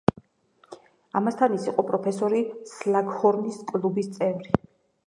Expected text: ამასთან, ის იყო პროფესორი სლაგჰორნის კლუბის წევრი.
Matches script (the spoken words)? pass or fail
pass